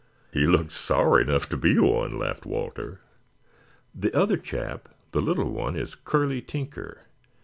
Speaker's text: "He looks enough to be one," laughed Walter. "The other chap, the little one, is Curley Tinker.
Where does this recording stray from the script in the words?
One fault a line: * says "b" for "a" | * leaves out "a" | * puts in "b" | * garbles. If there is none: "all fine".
* puts in "sour"